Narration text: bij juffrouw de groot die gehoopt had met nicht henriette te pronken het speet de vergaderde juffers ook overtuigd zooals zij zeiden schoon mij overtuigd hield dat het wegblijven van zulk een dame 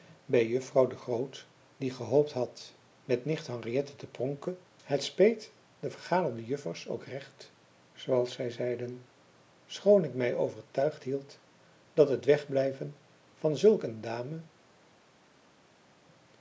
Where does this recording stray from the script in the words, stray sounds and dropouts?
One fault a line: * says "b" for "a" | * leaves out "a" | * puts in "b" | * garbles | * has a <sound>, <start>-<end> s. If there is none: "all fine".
* says "recht" for "overtuigd"
* puts in "ik"